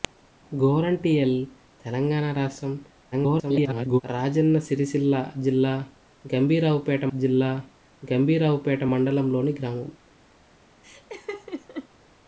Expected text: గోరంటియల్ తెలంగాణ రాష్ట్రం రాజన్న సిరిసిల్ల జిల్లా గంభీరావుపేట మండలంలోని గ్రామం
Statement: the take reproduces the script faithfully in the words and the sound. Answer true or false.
false